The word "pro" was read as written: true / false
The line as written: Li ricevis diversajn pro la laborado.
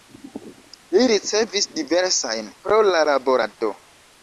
true